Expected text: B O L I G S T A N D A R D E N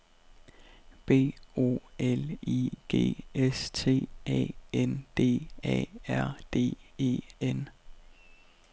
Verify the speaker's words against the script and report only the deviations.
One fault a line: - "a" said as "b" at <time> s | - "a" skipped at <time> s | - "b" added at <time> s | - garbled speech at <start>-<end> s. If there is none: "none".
none